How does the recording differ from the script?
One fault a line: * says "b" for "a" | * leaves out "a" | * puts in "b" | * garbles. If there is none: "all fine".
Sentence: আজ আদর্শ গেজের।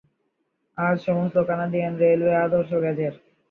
* puts in "সমস্ত কানাডিয়ান রেলওয়ে"